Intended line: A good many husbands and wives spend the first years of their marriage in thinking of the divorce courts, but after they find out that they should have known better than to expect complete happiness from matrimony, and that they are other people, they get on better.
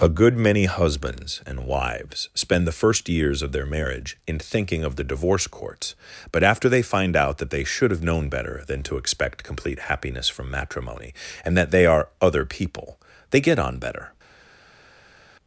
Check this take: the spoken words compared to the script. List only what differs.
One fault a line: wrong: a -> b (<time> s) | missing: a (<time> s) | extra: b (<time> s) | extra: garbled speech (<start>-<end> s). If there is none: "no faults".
no faults